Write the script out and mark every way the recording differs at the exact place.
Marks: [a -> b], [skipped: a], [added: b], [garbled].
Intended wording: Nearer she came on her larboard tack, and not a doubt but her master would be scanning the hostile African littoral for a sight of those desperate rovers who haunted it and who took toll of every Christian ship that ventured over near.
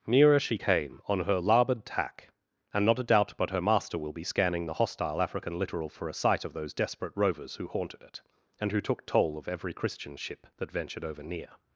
Nearer she came on her larboard tack, and not a doubt but her master [would -> will] be scanning the hostile African littoral for a sight of those desperate rovers who haunted it and who took toll of every Christian ship that ventured over near.